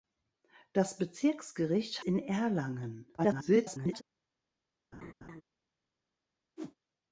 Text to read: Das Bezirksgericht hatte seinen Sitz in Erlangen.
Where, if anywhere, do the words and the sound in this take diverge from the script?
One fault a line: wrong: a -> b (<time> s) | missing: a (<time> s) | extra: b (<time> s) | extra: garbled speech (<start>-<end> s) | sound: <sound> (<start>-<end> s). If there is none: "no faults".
missing: hatte seinen Sitz (2.0 s)
extra: garbled speech (3.2-4.0 s)
sound: laugh (4.9-5.4 s)
sound: whoosh (6.6-6.8 s)